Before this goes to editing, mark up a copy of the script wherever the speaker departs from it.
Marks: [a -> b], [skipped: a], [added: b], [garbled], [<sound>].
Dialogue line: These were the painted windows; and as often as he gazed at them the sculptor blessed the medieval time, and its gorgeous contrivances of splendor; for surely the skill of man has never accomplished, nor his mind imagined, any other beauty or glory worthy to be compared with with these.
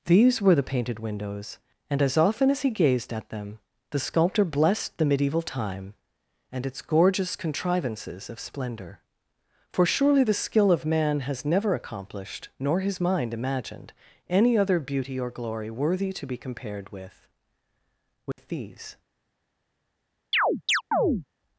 These were the painted windows; and as often as he gazed at them the sculptor blessed the medieval time, and its gorgeous contrivances of splendor; for surely the skill of man has never accomplished, nor his mind imagined, any other beauty or glory worthy to be compared with with [dropout] these. [chirp]